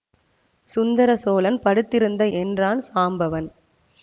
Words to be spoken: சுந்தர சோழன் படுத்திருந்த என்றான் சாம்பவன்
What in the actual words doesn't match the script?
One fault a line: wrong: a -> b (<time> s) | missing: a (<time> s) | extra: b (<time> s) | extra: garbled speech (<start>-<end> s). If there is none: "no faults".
no faults